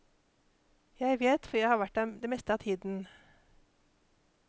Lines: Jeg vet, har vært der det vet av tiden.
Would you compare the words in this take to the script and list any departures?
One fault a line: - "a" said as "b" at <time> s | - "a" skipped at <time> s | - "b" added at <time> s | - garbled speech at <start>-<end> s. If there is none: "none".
- "for jeg" added at 1.4 s
- "vet" said as "meste" at 2.3 s